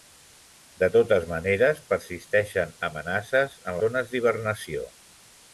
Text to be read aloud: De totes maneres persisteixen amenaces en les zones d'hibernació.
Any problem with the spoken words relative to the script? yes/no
yes